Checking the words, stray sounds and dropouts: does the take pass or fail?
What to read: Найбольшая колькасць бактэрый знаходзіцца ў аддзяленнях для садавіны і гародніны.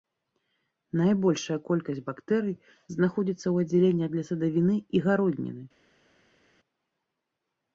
pass